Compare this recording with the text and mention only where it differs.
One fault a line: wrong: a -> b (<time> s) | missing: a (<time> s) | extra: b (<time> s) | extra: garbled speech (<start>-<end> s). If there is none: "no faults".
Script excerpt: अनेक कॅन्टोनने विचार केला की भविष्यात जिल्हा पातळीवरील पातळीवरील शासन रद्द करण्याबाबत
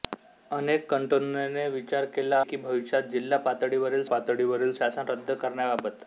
no faults